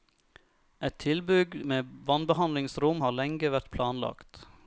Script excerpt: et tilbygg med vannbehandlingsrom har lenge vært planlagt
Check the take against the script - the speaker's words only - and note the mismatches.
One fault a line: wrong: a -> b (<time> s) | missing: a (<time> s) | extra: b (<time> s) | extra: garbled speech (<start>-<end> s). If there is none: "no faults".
no faults